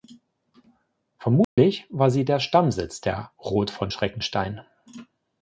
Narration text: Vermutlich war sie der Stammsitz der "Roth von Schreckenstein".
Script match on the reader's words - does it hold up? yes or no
yes